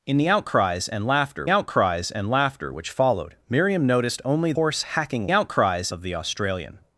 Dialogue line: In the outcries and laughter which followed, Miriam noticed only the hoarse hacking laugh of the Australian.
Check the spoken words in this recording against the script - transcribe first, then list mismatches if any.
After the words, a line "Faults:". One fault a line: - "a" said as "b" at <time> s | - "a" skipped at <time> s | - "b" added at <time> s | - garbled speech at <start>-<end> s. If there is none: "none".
In the outcries and laughter outcries and laughter which followed, Miriam noticed only hoarse hacking outcries of the Australian.
Faults:
- "outcries and laughter" added at 1.5 s
- "the" skipped at 4.5 s
- "laugh" said as "outcries" at 5.3 s